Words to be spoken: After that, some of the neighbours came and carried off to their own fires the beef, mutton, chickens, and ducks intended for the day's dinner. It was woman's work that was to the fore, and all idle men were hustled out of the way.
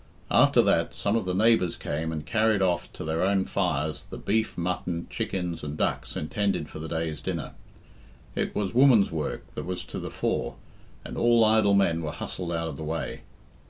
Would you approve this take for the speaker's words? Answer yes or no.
yes